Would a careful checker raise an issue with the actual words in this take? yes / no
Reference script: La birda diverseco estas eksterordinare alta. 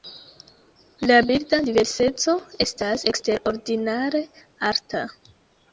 no